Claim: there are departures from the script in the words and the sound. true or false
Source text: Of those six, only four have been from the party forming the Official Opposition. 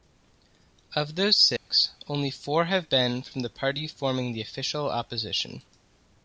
true